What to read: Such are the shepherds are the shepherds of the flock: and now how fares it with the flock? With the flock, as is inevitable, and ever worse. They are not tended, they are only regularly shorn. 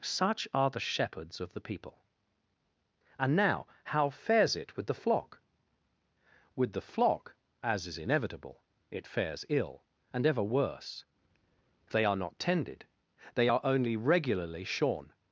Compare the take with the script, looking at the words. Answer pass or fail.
fail